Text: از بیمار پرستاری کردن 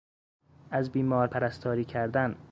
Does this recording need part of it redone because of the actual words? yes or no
no